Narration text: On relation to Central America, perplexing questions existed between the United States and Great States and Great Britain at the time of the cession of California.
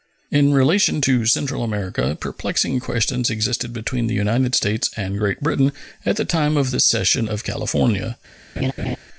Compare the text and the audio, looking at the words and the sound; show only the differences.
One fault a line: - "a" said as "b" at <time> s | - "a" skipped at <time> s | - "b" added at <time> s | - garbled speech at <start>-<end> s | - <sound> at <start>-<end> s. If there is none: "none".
- "On" said as "In" at 0.3 s
- "States and Great" skipped at 5.4 s
- laugh at 8.6-9.0 s